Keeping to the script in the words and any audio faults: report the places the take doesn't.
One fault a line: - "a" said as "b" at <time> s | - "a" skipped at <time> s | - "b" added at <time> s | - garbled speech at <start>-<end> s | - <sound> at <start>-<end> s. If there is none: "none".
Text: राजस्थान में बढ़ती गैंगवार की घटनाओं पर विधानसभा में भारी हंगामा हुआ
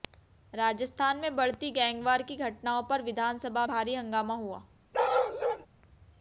- "में" skipped at 3.6 s
- bark at 4.9-5.7 s